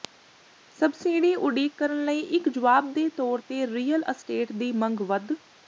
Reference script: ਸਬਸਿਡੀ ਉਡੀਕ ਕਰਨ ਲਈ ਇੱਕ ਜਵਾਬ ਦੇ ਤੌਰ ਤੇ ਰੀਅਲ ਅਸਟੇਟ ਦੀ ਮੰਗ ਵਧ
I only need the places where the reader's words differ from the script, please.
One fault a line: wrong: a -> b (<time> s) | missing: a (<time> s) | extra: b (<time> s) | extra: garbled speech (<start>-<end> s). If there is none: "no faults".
no faults